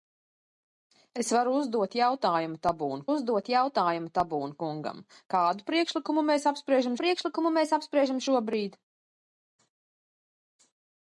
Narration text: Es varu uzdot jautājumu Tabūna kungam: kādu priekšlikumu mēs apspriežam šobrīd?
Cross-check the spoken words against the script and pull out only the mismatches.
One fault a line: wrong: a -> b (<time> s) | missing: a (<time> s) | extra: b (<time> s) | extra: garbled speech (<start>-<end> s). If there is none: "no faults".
extra: uzdot jautājumu Tabūna (3.1 s)
extra: priekšlikumu mēs apspriežam (7.0 s)